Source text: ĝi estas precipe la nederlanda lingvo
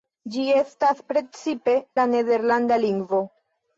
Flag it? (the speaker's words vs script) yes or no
no